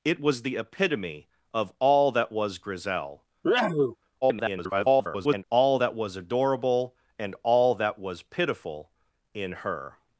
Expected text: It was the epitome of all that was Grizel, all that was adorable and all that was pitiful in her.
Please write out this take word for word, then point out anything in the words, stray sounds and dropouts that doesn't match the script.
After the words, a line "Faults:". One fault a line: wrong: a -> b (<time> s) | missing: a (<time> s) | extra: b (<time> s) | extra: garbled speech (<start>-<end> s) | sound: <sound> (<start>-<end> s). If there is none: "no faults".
It was the epitome of all that was Grizel, [garbled] all that was adorable and all that was pitiful in her.
Faults:
sound: sneeze (3.4-4.0 s)
extra: garbled speech (4.2-5.4 s)